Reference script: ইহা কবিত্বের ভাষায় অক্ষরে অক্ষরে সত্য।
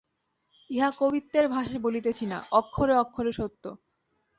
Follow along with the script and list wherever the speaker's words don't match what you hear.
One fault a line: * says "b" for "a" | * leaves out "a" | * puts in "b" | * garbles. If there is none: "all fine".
* puts in "বলিতেছি না"